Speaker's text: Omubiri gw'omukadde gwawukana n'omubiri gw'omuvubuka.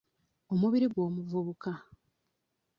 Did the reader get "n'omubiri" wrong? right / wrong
wrong